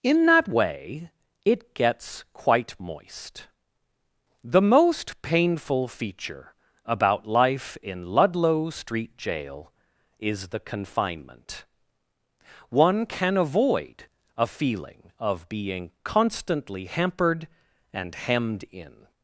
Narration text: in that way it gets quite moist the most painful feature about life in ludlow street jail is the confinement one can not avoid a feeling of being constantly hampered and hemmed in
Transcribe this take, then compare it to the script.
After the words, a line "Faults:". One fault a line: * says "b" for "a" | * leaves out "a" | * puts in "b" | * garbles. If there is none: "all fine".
in that way it gets quite moist the most painful feature about life in ludlow street jail is the confinement one can avoid a feeling of being constantly hampered and hemmed in
Faults:
* leaves out "not"